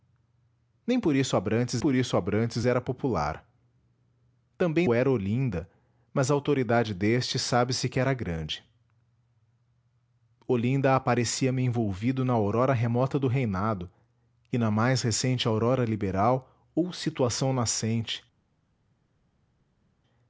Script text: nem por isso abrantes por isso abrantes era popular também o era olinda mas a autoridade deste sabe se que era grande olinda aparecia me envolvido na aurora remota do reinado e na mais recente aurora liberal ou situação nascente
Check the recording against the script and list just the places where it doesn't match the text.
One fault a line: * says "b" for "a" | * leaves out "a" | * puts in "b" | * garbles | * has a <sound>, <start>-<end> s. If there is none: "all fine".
all fine